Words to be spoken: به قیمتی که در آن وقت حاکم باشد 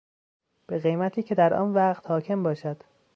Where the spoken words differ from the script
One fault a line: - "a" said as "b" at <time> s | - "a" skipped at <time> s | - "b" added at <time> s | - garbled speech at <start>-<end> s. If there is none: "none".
none